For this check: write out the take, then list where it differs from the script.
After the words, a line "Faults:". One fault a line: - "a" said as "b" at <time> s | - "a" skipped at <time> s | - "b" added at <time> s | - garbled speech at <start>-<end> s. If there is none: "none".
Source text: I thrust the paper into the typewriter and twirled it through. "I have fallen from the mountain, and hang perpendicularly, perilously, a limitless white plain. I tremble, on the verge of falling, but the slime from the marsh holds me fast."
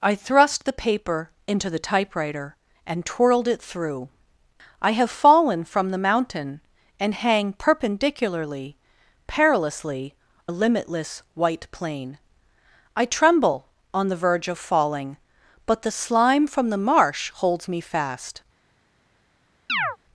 I thrust the paper into the typewriter and twirled it through. "I have fallen from the mountain, and hang perpendicularly, perilously, a limitless white plain. I tremble, on the verge of falling, but the slime from the marsh holds me fast."
Faults:
none